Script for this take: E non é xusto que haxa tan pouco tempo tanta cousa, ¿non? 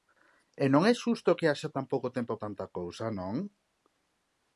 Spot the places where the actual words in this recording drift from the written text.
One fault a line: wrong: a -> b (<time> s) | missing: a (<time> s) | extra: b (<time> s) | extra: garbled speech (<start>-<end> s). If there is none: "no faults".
no faults